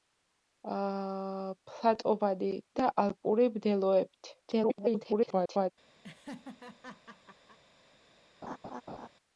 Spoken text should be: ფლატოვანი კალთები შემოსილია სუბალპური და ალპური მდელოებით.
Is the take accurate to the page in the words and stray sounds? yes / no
no